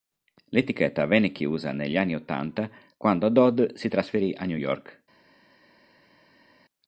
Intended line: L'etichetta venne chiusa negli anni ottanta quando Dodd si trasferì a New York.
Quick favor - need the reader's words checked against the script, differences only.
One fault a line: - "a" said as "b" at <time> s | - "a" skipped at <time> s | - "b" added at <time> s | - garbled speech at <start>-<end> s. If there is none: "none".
none